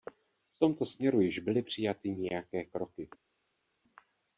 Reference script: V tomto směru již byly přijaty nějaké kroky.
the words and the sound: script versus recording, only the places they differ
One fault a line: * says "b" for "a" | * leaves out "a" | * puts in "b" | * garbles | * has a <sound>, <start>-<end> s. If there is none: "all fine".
all fine